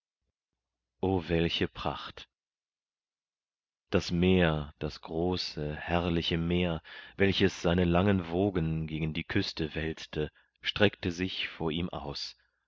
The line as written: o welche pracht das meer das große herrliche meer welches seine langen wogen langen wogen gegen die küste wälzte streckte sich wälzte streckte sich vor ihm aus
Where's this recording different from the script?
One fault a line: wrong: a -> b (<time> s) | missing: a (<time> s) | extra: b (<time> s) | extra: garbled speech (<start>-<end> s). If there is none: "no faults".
missing: langen wogen (8.9 s)
missing: wälzte streckte sich (11.5 s)